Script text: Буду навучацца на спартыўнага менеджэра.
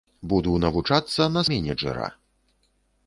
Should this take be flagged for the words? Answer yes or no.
yes